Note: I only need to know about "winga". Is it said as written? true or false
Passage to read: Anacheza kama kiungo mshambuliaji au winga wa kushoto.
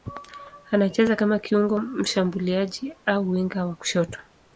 true